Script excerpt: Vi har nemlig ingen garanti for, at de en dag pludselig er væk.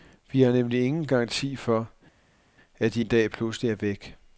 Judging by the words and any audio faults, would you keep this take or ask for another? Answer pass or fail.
pass